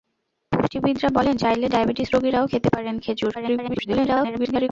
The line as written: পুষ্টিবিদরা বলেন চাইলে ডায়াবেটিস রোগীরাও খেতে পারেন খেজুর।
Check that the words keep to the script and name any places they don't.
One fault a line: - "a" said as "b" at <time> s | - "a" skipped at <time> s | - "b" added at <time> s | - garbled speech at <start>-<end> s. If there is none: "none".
- garbled speech at 3.3-4.7 s